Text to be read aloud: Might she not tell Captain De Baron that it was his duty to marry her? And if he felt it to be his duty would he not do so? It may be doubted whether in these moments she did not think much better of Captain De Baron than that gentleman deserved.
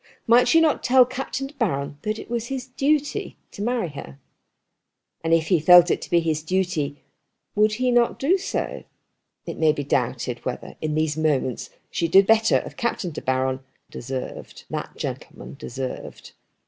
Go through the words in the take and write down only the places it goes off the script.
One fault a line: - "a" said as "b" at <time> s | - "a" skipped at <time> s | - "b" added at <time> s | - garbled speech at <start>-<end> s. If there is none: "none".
- "not think much" skipped at 12.3 s
- "than" said as "deserved" at 13.9 s